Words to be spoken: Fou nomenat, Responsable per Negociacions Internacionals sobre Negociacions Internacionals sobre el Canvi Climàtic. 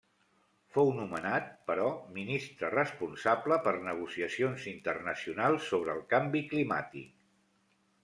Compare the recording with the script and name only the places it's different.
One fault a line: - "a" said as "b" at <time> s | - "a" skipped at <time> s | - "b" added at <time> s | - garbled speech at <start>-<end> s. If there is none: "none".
- "però Ministre" added at 1.7 s
- "Negociacions Internacionals sobre" skipped at 6.0 s